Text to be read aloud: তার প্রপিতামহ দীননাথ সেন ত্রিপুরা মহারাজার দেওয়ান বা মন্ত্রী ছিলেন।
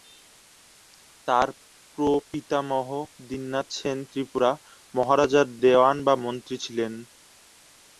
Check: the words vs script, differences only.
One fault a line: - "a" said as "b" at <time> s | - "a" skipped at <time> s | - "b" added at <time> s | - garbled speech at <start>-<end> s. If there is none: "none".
none